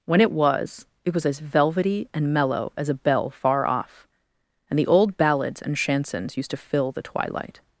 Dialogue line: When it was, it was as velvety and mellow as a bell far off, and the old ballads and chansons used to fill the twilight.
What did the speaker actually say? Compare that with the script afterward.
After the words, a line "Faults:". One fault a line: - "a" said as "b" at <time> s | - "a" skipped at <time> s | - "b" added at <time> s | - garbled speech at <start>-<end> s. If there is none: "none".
When it was, it was as velvety and mellow as a bell far off, and the old ballads and chansons used to fill the twilight.
Faults:
none